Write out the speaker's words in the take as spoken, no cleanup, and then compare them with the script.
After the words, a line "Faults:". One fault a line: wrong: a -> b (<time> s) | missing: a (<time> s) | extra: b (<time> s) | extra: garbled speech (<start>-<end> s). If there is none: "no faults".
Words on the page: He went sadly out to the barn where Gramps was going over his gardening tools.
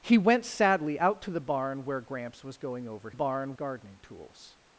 He went sadly out to the barn where Gramps was going over barn gardening tools.
Faults:
wrong: his -> barn (3.1 s)